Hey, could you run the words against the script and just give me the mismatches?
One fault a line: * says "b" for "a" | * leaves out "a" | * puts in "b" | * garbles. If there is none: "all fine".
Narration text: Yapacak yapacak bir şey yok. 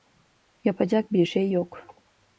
* leaves out "yapacak"